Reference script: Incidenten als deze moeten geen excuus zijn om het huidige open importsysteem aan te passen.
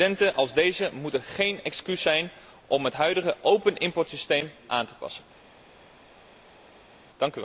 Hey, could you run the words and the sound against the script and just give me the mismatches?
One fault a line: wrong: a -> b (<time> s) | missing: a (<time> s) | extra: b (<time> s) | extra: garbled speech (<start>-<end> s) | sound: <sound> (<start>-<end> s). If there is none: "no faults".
no faults